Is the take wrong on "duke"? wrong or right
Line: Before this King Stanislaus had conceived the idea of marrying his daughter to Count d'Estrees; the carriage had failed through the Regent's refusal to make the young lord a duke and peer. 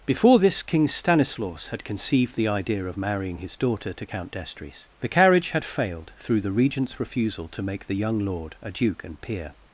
right